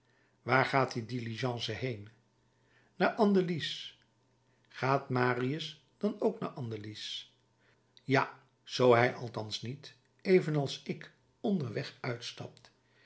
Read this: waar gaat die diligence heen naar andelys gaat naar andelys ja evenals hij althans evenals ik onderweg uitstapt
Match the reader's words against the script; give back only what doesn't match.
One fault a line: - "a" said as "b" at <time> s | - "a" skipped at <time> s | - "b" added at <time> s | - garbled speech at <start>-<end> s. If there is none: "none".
- "marius dan ook" added at 5.1 s
- "evenals" said as "zoo" at 8.6 s
- "niet" added at 9.6 s